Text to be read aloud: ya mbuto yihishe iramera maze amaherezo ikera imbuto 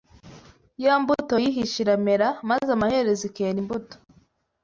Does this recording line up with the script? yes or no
yes